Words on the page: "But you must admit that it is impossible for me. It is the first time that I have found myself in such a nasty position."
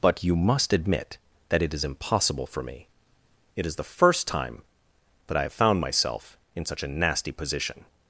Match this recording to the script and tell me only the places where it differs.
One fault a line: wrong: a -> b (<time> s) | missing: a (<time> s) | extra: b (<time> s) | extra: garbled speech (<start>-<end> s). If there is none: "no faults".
no faults